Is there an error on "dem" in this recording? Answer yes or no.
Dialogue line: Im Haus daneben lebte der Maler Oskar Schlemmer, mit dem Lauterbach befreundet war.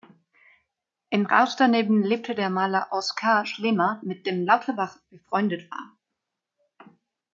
no